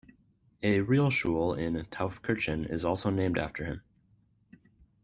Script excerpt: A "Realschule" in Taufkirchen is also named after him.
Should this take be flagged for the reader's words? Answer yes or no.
no